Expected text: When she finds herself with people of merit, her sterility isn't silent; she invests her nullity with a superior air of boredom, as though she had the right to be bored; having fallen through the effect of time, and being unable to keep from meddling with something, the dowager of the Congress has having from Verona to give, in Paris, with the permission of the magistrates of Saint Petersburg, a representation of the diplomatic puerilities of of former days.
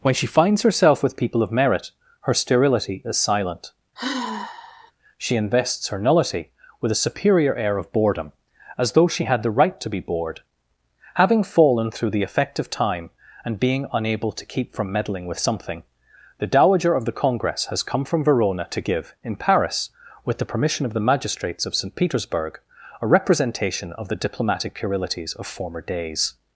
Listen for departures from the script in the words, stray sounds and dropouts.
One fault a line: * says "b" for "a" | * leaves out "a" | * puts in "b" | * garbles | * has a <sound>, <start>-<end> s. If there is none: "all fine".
* says "is" for "isn't"
* has a sigh, 4.0-4.9 s
* says "come" for "having"
* leaves out "of"